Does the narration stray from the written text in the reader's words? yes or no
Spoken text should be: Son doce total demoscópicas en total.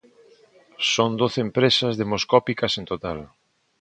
yes